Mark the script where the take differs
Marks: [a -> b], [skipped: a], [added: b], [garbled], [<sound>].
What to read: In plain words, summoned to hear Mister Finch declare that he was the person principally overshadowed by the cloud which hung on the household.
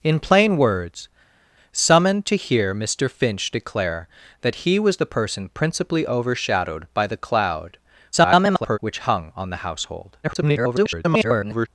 In plain words, summoned to hear Mister Finch declare that he was the person principally overshadowed by the cloud [garbled] which hung on the household. [garbled]